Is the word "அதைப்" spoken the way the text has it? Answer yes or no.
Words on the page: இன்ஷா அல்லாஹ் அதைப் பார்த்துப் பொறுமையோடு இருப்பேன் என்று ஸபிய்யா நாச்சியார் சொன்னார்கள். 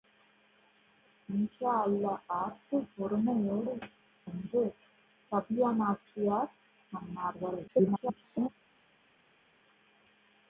no